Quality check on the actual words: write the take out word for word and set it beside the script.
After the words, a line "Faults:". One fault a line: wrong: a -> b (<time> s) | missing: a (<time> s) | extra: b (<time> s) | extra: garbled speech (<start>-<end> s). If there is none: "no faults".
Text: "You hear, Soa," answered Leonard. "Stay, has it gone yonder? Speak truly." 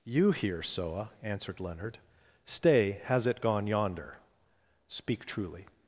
"You hear, Soa," answered Leonard. "Stay, has it gone yonder? Speak truly."
Faults:
no faults